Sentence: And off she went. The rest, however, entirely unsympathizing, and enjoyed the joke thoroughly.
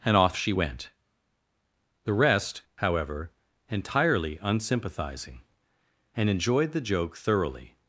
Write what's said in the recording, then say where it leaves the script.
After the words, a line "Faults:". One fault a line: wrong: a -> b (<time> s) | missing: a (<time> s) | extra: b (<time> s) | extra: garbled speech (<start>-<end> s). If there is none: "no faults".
And off she went. The rest, however, entirely unsympathizing, and enjoyed the joke thoroughly.
Faults:
no faults